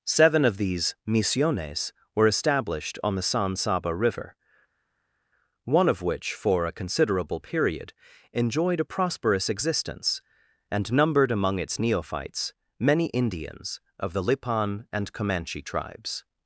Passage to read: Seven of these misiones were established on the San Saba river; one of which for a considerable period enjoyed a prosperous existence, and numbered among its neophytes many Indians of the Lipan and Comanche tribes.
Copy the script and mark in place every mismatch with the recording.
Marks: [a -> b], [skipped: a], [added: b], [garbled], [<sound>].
Seven of these misiones were established on the San Saba river; one of which for a considerable period enjoyed a prosperous existence, and numbered among its neophytes many Indians of the Lipan and Comanche tribes.